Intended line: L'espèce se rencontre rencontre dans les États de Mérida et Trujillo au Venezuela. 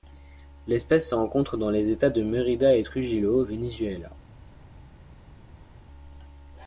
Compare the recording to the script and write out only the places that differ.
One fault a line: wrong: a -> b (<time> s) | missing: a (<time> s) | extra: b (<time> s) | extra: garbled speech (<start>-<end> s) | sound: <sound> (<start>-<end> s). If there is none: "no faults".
missing: rencontre (1.6 s)